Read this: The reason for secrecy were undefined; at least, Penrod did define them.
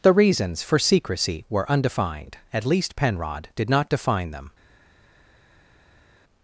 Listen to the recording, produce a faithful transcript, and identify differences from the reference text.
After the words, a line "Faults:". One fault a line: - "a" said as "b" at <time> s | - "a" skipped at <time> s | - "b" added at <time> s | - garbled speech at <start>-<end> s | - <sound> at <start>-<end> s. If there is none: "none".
The reasons for secrecy were undefined; at least, Penrod did not define them.
Faults:
- "reason" said as "reasons" at 0.1 s
- "not" added at 3.7 s